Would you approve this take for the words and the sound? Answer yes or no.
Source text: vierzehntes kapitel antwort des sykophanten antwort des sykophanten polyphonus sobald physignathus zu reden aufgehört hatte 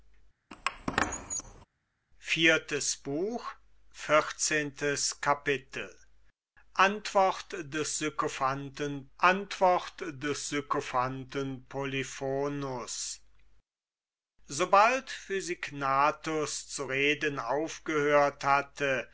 no